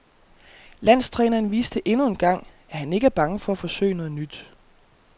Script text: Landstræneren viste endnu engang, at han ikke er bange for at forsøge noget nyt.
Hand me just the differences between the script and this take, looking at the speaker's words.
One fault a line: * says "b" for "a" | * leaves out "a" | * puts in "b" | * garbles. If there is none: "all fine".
all fine